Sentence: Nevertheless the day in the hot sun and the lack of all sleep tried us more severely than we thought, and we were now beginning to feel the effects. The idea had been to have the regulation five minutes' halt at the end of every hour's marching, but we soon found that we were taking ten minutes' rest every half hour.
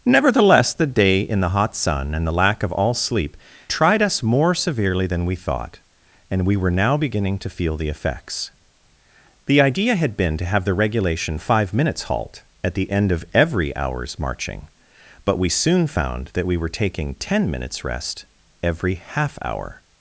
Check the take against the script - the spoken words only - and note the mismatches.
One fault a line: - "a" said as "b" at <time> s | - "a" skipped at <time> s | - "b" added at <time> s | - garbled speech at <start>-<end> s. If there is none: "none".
none